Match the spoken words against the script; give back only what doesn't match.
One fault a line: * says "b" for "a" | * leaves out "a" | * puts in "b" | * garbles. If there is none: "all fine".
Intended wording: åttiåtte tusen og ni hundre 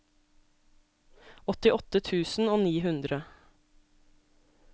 all fine